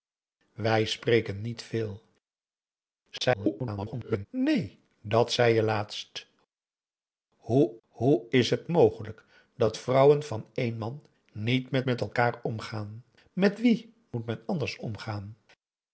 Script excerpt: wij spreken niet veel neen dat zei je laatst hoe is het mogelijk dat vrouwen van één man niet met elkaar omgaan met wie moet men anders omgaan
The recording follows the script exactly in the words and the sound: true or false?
false